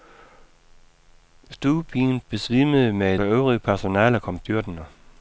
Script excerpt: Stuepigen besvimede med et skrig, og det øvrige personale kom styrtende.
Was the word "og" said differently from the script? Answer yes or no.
yes